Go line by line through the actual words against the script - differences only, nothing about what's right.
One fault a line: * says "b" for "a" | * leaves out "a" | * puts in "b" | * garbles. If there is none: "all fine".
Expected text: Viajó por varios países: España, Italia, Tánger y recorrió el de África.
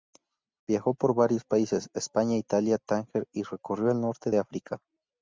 * puts in "norte"